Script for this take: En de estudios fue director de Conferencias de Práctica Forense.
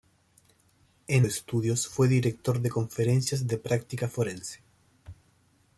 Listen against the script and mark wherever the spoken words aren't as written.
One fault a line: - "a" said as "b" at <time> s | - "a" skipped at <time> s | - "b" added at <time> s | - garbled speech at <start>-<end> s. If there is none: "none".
none